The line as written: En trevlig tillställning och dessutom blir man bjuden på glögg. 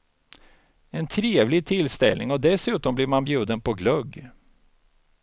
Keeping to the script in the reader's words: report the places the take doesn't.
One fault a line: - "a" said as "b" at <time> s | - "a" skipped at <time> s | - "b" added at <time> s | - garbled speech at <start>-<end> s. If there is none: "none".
none